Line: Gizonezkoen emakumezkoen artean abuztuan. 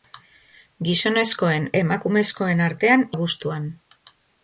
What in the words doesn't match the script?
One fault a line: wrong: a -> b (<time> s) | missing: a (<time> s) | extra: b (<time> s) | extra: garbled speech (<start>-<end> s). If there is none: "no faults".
no faults